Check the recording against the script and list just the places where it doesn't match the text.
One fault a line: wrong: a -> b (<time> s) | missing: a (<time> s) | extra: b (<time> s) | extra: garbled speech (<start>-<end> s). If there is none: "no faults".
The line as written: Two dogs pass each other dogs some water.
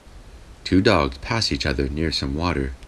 wrong: dogs -> near (1.9 s)